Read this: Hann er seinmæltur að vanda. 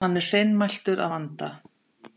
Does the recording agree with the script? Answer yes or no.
yes